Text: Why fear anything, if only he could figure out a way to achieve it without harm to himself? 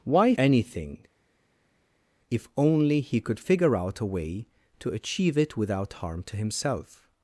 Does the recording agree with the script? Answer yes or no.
no